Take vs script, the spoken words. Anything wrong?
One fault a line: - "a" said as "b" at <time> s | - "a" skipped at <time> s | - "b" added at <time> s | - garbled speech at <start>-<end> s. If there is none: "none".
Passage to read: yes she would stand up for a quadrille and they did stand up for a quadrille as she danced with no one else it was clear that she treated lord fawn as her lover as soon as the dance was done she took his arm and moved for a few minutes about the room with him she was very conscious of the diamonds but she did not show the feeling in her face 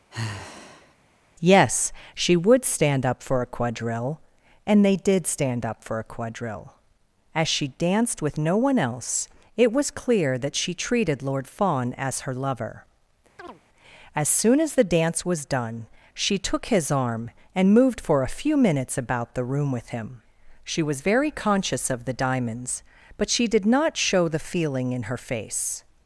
none